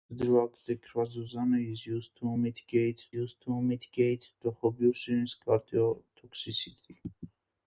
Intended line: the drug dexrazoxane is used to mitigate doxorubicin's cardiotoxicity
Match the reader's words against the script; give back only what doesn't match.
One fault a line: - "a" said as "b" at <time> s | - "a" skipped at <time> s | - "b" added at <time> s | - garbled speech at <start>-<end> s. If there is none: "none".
- "used to mitigate" added at 3.1 s